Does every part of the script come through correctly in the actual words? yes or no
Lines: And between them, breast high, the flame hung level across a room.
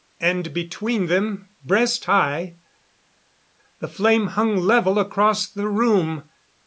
no